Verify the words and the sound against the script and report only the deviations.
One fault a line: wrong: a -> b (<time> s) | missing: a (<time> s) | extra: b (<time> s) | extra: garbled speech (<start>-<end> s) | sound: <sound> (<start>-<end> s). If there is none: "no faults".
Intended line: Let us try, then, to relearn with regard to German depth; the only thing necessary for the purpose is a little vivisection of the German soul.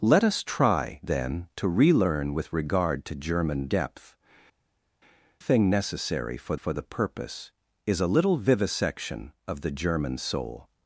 missing: the only (4.2 s)
extra: for (6.5 s)